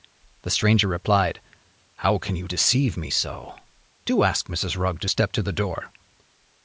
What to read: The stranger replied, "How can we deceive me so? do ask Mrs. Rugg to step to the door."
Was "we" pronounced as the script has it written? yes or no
no